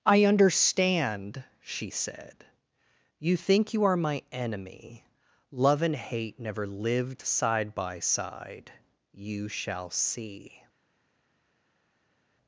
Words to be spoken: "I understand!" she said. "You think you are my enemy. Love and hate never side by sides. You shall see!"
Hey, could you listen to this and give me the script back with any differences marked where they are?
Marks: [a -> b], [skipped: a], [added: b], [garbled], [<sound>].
"I understand!" she said. "You think you are my enemy. Love and hate never [added: lived] side by [sides. -> side] You shall see!"